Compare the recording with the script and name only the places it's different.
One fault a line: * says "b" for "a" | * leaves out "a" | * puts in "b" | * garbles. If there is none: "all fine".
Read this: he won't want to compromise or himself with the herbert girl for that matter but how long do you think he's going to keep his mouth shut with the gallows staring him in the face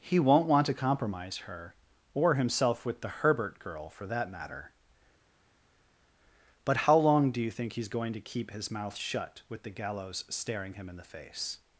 * puts in "her"